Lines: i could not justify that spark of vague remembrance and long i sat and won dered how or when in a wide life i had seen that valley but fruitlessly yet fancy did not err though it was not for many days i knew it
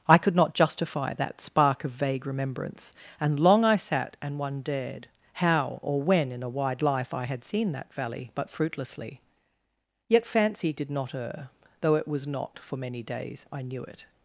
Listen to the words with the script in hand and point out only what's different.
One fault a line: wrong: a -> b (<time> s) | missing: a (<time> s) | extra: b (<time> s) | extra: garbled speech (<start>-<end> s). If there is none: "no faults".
wrong: won dered -> one dared (4.4 s)